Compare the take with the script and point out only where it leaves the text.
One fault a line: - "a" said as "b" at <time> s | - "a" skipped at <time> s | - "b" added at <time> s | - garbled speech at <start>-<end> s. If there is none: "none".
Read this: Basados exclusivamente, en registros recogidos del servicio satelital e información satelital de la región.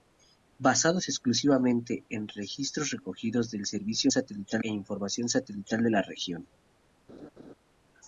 none